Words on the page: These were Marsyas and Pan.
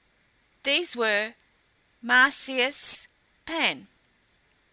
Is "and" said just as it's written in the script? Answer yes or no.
no